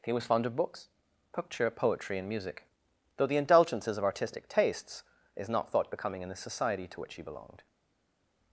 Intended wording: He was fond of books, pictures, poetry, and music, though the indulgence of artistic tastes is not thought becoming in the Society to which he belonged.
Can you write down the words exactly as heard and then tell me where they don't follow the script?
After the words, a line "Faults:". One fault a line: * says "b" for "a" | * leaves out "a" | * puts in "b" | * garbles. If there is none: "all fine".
He was fond of books, picture, poetry, and music, though the indulgences of artistic tastes is not thought becoming in the Society to which he belonged.
Faults:
* says "picture" for "pictures"
* says "indulgences" for "indulgence"